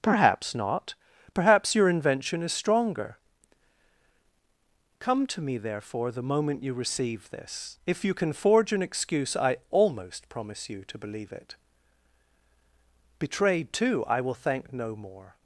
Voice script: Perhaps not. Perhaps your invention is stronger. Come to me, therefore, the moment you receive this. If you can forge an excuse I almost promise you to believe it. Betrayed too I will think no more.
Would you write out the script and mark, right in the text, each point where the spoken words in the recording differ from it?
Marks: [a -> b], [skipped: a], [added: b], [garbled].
Perhaps not. Perhaps your invention is stronger. Come to me, therefore, the moment you receive this. If you can forge an excuse I almost promise you to believe it. Betrayed too I will [think -> thank] no more.